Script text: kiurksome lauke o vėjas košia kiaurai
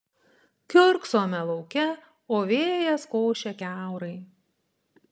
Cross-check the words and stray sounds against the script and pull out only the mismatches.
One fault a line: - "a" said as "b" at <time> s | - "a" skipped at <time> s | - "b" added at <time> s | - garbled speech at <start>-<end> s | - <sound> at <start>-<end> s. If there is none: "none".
none